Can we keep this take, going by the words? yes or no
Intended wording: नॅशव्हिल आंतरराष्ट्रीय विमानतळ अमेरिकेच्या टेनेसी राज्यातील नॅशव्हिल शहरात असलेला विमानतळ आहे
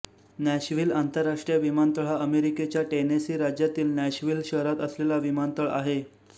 no